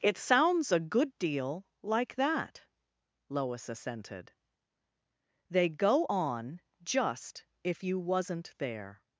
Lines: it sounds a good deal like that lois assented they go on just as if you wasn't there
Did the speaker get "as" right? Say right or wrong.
wrong